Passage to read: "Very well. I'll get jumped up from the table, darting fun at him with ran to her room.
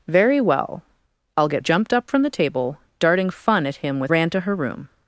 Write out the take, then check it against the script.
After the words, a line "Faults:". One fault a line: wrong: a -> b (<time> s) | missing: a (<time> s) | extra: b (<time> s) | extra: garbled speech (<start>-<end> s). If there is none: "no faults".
"Very well. I'll get jumped up from the table, darting fun at him with ran to her room.
Faults:
no faults